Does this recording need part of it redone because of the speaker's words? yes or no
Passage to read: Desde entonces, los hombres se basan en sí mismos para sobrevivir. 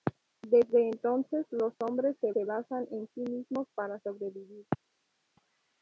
yes